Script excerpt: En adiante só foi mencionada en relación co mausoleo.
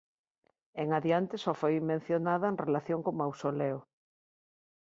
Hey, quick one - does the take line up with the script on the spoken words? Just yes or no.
yes